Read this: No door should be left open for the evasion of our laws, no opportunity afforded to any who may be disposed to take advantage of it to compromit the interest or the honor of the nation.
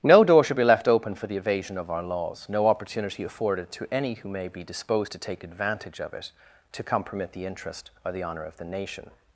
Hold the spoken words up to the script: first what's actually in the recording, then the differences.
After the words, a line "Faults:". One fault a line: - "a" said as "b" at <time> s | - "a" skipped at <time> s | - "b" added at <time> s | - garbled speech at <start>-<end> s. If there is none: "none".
No door should be left open for the evasion of our laws, no opportunity afforded to any who may be disposed to take advantage of it to compromit the interest or the honor of the nation.
Faults:
none